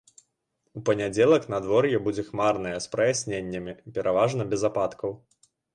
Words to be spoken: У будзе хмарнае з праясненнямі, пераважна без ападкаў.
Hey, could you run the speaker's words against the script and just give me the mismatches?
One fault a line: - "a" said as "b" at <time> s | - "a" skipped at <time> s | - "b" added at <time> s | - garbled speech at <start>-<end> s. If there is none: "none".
- "панядзелак надвор'е" added at 0.9 s